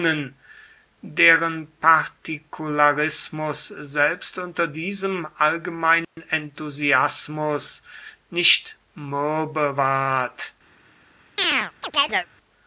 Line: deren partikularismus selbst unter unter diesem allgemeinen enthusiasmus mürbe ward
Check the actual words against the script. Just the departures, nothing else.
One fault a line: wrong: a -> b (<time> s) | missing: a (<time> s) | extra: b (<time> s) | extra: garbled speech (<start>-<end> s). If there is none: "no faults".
missing: unter (4.7 s)
extra: nicht (8.3 s)